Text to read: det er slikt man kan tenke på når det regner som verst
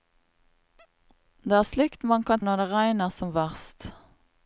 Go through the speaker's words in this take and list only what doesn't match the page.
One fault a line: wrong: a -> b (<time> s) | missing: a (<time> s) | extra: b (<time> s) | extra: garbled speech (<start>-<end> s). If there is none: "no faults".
missing: tenke på (2.4 s)